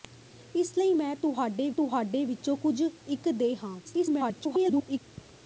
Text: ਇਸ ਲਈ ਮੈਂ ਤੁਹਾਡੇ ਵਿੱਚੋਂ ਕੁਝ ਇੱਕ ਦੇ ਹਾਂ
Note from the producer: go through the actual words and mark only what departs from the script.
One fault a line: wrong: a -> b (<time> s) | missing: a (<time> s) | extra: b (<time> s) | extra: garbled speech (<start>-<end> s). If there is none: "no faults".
extra: ਤੁਹਾਡੇ (1.7 s)
extra: garbled speech (3.8-5.0 s)